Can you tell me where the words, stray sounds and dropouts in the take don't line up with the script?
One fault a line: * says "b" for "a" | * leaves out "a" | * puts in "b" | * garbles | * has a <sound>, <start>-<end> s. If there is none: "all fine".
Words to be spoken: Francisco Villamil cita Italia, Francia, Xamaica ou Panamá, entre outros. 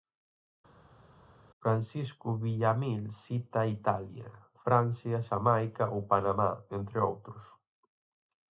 all fine